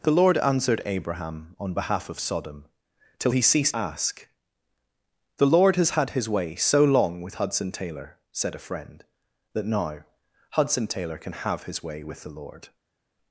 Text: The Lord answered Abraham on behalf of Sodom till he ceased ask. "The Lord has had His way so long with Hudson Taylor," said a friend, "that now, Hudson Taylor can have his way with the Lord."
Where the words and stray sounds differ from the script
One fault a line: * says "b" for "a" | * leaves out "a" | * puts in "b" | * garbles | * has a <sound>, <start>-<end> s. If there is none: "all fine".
all fine